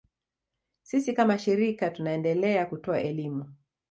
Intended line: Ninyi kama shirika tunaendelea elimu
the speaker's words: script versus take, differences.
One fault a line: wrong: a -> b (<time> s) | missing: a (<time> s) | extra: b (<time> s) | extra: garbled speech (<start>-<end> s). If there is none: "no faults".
wrong: Ninyi -> Sisi (0.8 s)
extra: kutoa (2.6 s)